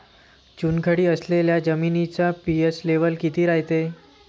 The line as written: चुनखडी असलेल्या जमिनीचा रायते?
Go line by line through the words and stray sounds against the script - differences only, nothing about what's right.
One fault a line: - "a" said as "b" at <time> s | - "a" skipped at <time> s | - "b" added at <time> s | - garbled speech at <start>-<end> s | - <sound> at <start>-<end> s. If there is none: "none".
- "पी.एच लेव्हल किती" added at 2.5 s